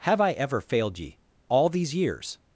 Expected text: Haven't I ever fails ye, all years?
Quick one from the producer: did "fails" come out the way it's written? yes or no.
no